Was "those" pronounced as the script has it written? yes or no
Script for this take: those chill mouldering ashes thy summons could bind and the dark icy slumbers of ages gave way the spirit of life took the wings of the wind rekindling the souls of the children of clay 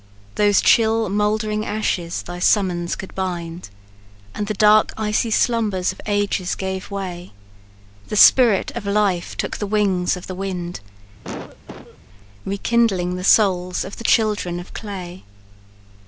yes